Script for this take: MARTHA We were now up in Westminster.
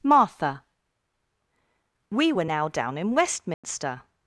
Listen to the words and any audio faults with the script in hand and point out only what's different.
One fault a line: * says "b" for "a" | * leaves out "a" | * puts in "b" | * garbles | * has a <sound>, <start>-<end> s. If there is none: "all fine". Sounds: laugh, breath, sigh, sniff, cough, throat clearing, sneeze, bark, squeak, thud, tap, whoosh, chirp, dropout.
* says "down" for "up"
* has a dropout, 3.5-3.6 s